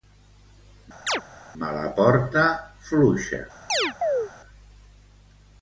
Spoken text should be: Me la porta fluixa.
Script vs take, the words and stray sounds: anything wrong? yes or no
yes